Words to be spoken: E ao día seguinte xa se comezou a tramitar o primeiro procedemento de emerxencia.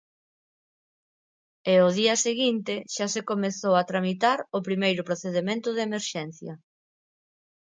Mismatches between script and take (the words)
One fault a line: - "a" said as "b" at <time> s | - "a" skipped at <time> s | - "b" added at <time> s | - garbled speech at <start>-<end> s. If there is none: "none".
none